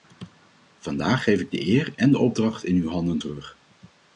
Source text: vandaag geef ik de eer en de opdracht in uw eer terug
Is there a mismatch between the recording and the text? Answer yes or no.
yes